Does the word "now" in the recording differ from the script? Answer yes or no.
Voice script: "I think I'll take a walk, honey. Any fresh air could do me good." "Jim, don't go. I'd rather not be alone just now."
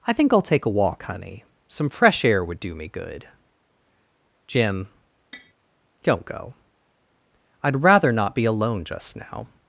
no